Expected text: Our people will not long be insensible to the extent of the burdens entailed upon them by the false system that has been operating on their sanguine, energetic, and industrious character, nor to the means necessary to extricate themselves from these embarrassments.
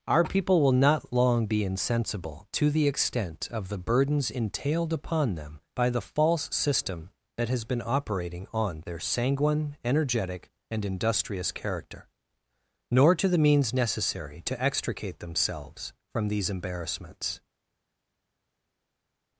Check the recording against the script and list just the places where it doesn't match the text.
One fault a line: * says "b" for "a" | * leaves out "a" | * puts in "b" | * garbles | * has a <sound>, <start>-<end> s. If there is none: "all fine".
all fine